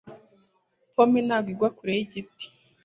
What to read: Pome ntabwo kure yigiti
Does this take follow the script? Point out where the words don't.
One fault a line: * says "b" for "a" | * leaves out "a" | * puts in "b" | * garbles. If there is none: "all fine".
* puts in "igwa"